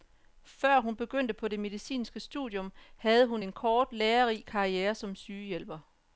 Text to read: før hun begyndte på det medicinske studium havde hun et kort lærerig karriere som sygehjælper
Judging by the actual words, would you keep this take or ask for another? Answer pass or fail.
fail